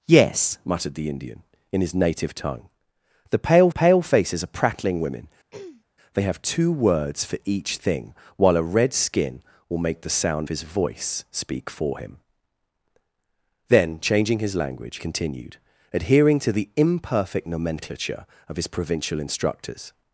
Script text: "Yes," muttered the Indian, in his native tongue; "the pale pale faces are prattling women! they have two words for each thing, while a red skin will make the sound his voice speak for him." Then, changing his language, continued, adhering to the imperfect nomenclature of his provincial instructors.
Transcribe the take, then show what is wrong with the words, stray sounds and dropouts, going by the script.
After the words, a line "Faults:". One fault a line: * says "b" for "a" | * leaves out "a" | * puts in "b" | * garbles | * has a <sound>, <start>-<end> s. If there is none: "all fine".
"Yes," muttered the Indian, in his native tongue; "the pale pale faces are prattling women! they have two words for each thing, while a red skin will make the sound his voice speak for him." Then, changing his language, continued, adhering to the imperfect nomenclature of his provincial instructors.
Faults:
* has a throat clearing, 5.5-5.8 s